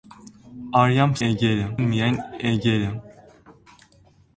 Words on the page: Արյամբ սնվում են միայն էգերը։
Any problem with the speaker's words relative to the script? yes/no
yes